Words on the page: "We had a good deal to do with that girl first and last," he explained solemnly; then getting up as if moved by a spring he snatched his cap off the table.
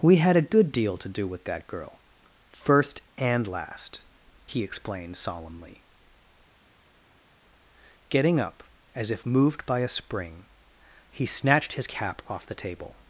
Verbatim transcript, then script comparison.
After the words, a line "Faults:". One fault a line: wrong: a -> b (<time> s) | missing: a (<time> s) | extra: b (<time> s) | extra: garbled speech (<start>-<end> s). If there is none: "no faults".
"We had a good deal to do with that girl first and last," he explained solemnly; getting up as if moved by a spring he snatched his cap off the table.
Faults:
missing: then (5.8 s)